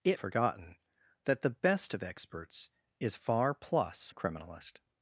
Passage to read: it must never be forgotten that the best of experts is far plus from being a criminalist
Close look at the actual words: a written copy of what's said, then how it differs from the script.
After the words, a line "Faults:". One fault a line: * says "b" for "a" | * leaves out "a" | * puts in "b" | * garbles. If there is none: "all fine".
it forgotten that the best of experts is far plus a criminalist
Faults:
* leaves out "must never be"
* leaves out "from being"